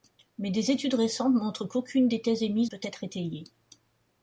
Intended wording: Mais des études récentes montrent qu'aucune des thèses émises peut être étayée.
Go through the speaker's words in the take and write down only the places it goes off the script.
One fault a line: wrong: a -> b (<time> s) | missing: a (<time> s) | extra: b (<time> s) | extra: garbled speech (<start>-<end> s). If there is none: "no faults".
no faults